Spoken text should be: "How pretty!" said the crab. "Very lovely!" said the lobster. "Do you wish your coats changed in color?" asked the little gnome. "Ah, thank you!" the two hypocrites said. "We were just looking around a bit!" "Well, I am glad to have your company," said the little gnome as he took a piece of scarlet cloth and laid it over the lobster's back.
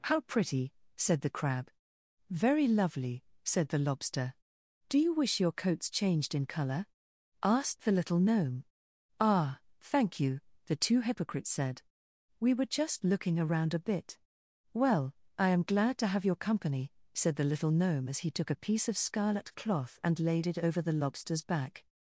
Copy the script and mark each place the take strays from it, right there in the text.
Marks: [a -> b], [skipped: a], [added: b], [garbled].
"How pretty!" said the crab. "Very lovely!" said the lobster. "Do you wish your coats changed in color?" asked the little gnome. "Ah, thank you!" the two hypocrites said. "We were just looking around a bit!" "Well, I am glad to have your company," said the little gnome as he took a piece of scarlet cloth and laid it over the lobster's back.